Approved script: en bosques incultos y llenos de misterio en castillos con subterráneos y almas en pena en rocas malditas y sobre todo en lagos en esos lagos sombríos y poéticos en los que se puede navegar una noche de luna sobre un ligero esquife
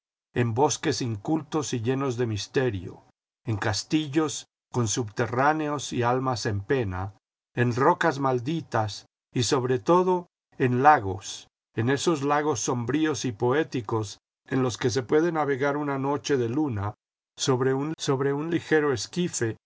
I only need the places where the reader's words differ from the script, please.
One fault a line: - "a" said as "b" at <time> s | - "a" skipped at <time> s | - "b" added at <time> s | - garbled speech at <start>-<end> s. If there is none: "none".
- "sobre un" added at 18.0 s